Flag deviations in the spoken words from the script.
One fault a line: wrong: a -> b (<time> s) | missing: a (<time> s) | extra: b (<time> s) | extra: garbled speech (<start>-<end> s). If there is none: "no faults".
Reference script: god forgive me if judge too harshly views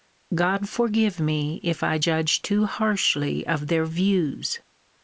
extra: i (1.8 s)
extra: of their (3.4 s)